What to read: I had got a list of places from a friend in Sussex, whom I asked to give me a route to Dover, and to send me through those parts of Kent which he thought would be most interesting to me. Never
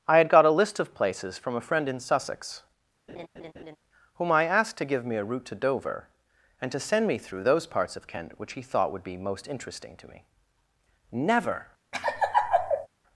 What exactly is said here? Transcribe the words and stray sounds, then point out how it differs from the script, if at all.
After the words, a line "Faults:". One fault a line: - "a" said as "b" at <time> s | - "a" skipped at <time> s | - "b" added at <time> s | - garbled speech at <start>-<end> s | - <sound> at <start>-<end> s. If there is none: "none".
I had got a list of places from a friend in Sussex, whom I asked to give me a route to Dover, and to send me through those parts of Kent which he thought would be most interesting to me. Never
Faults:
- laugh at 3.1-3.8 s
- laugh at 11.9-12.9 s